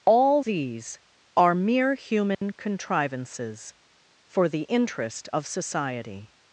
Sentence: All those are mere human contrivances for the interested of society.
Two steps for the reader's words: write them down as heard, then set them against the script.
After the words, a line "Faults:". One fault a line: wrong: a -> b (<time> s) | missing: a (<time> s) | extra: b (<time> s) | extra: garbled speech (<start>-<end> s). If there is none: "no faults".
All these are mere human contrivances for the interest of society.
Faults:
wrong: those -> these (0.4 s)
wrong: interested -> interest (4.6 s)